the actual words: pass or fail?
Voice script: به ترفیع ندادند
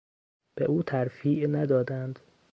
fail